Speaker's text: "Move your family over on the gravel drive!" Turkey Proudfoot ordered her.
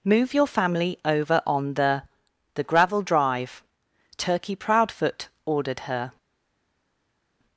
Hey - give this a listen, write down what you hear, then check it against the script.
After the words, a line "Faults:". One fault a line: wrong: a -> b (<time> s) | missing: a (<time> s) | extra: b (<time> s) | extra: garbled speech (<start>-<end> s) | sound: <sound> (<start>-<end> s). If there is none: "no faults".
"Move your family over on the the gravel drive!" Turkey Proudfoot ordered her.
Faults:
extra: the (2.5 s)